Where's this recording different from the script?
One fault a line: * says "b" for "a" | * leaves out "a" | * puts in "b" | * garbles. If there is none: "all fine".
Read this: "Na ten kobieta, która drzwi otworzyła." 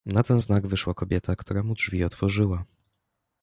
* puts in "znak wyszła"
* puts in "mu"